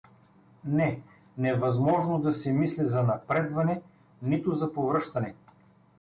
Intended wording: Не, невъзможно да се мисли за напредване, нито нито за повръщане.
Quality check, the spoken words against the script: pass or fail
fail